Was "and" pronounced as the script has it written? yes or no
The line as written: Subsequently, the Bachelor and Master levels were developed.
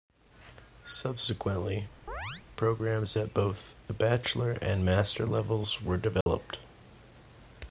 yes